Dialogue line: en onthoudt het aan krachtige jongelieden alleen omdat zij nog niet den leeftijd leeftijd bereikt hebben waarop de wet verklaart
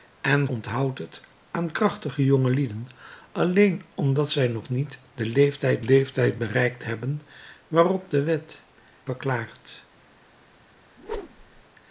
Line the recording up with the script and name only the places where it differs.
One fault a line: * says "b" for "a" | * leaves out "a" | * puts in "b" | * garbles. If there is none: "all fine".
all fine